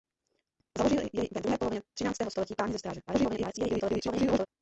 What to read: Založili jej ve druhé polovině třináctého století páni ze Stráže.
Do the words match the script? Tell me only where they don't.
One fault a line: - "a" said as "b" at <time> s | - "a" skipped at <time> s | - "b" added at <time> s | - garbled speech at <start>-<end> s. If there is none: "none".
- garbled speech at 3.1-4.5 s